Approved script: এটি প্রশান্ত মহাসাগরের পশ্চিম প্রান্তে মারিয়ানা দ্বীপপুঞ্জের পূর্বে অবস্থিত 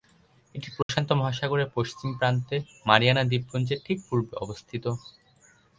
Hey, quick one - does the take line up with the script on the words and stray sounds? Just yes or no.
no